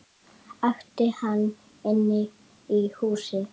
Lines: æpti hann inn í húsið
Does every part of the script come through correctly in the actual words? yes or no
yes